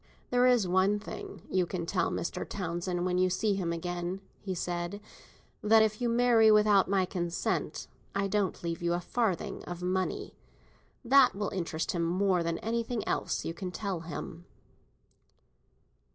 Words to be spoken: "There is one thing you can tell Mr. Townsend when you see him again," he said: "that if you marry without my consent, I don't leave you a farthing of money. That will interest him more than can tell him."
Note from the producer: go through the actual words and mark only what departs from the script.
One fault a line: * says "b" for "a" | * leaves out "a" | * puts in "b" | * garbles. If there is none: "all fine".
* puts in "anything else you"